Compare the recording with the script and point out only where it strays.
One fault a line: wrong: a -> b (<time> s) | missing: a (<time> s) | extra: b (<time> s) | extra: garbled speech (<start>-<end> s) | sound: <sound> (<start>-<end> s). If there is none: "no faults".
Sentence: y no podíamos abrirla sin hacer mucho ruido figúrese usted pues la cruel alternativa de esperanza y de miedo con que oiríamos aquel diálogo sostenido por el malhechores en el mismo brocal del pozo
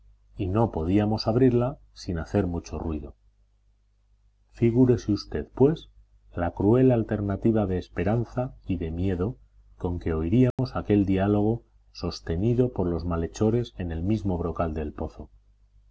sound: dropout (10.5-10.6 s)
wrong: el -> los (12.9 s)